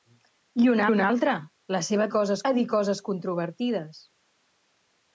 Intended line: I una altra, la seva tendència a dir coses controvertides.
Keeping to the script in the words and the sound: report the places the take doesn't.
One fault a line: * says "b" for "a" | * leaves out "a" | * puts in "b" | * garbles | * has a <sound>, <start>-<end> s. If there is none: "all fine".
* puts in "una"
* says "coses" for "tendència"